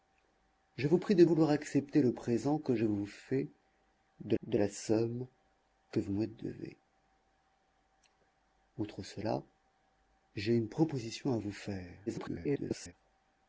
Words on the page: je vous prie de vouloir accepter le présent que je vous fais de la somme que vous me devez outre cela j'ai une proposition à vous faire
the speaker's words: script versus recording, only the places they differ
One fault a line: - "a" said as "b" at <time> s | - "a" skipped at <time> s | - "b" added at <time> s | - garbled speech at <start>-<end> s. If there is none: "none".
- "de" added at 4.4 s
- garbled speech at 12.1-12.9 s